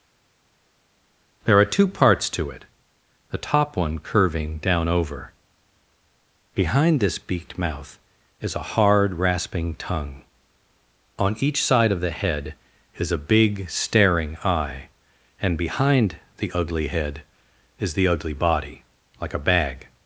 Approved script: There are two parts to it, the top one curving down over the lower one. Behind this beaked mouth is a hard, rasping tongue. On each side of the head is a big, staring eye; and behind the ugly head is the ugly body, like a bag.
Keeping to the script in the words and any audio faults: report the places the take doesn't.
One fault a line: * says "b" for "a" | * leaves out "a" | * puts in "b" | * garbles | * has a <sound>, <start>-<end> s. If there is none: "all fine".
* leaves out "the lower one"